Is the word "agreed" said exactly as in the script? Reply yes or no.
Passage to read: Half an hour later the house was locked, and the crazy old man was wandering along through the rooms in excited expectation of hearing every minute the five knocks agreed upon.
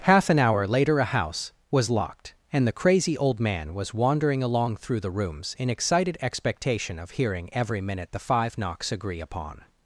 no